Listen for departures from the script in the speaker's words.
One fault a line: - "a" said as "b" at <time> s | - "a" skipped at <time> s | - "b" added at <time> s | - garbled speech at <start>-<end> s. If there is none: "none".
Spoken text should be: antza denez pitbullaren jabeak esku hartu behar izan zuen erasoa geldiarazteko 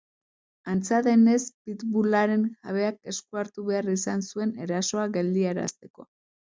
none